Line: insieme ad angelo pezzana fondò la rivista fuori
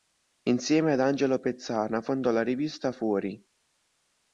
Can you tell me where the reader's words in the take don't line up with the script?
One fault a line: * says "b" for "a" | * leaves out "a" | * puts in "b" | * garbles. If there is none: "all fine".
all fine